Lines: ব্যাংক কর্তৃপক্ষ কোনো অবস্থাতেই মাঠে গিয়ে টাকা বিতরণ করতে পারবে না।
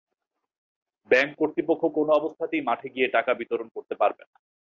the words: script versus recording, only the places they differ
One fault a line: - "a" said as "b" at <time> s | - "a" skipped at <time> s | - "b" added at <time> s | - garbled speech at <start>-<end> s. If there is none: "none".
none